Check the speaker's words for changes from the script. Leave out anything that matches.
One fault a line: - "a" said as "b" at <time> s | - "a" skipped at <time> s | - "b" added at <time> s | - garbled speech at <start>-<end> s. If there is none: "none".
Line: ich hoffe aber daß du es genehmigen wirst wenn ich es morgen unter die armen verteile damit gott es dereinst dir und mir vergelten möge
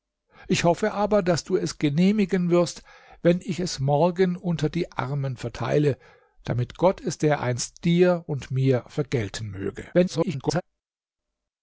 - garbled speech at 9.9-10.6 s